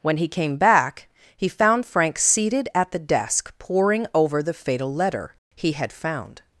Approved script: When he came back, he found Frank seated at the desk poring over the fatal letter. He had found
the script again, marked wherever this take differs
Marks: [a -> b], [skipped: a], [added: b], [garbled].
When he came back, he found Frank seated at the desk poring over the fatal letter. He had found